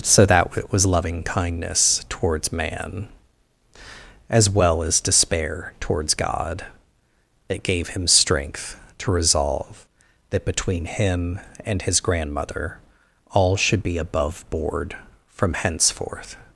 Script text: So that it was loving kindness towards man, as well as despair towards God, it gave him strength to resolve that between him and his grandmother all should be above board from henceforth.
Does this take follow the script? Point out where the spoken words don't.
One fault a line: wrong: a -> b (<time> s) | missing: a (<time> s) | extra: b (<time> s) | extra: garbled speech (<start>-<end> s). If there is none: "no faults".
no faults